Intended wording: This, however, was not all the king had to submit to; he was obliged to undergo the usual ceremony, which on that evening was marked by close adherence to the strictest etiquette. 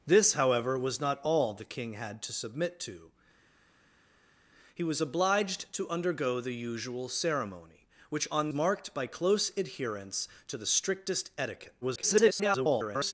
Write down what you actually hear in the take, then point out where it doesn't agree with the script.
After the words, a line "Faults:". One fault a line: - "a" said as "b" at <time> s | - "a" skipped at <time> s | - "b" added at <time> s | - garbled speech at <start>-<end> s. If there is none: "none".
This, however, was not all the king had to submit to; he was obliged to undergo the usual ceremony, which on marked by close adherence to the strictest etiquette. [garbled]
Faults:
- "that evening was" skipped at 8.5 s
- garbled speech at 11.8-13.1 s